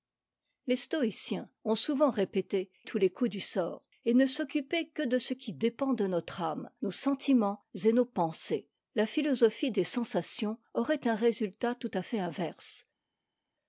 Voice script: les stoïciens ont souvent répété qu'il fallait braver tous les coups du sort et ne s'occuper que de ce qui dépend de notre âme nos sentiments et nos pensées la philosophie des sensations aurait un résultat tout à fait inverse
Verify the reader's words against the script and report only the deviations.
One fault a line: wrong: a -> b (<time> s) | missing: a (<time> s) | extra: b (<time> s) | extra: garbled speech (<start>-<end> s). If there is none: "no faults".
missing: qu'il fallait braver (2.7 s)